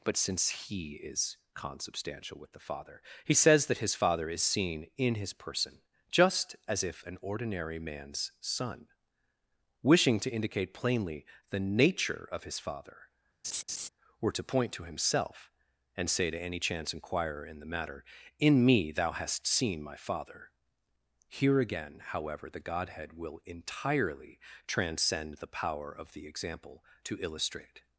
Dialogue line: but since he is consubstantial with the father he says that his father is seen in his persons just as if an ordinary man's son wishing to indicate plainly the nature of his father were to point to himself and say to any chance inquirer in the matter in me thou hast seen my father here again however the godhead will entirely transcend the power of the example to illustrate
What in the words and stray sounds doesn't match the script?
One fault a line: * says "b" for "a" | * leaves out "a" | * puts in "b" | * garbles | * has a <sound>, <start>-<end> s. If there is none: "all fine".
* says "person" for "persons"
* has a laugh, 13.4-13.9 s